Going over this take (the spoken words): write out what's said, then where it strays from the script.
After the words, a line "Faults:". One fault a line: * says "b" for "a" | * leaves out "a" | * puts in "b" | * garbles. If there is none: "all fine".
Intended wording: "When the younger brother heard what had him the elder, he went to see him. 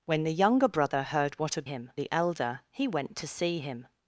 "When the younger brother heard what had him the elder, he went to see him.
Faults:
all fine